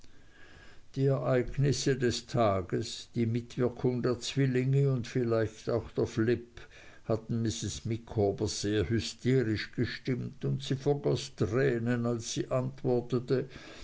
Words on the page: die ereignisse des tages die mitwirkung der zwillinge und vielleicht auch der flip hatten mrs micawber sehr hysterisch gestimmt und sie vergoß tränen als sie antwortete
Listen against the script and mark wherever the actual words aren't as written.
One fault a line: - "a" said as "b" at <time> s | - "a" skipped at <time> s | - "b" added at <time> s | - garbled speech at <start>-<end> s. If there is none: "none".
none